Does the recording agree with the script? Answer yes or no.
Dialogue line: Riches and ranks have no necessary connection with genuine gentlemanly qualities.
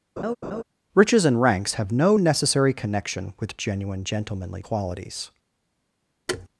yes